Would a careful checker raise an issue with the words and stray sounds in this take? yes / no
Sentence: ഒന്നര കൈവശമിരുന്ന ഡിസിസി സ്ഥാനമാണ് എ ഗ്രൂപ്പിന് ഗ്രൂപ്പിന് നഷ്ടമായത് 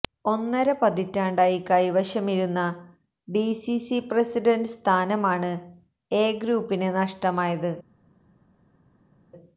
yes